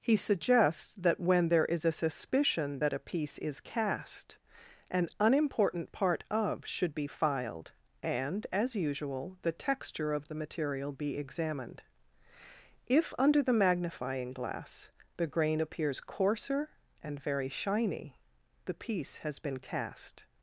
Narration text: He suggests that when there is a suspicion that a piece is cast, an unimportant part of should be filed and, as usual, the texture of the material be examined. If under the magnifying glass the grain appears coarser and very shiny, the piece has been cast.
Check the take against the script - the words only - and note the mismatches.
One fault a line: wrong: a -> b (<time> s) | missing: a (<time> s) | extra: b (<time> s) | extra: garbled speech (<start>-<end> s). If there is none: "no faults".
no faults